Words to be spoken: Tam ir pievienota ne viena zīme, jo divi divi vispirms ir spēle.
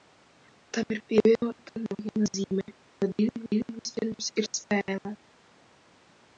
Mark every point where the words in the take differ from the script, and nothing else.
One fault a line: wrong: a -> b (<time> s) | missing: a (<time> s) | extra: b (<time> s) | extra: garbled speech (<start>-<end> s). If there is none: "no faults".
no faults